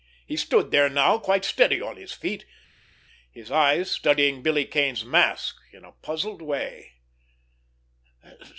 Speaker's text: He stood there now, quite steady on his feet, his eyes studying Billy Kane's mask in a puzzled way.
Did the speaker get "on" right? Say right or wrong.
right